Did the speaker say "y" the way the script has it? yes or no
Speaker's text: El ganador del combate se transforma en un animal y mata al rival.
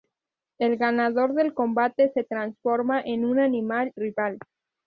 no